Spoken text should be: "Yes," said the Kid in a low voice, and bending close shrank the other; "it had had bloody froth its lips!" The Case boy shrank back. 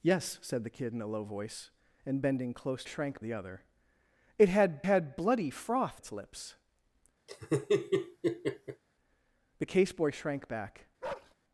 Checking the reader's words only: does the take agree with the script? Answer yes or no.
yes